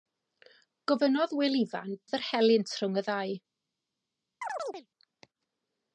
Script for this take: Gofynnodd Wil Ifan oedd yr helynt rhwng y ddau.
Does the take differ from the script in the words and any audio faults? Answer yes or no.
yes